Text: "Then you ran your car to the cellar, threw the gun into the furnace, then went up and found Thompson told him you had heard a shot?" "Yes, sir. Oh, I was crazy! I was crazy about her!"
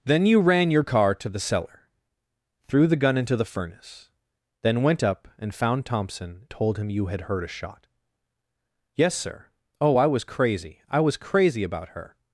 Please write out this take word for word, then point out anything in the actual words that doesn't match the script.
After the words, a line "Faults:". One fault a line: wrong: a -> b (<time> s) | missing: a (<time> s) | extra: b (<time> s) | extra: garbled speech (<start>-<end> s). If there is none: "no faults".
"Then you ran your car to the cellar, threw the gun into the furnace, then went up and found Thompson told him you had heard a shot?" "Yes, sir. Oh, I was crazy! I was crazy about her!"
Faults:
no faults